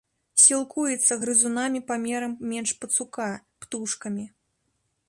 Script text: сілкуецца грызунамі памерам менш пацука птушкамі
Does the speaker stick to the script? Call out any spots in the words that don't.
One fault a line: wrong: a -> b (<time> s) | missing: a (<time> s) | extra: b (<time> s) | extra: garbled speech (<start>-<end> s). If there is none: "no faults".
no faults